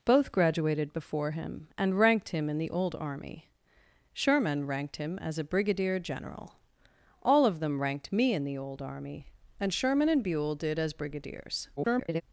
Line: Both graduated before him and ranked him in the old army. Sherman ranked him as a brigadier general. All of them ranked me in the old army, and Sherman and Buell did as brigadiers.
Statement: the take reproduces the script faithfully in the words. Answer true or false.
false